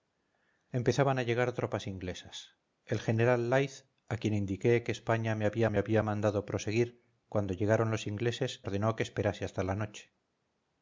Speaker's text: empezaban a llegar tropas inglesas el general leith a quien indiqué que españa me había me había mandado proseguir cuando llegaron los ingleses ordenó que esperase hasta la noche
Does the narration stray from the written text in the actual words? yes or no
no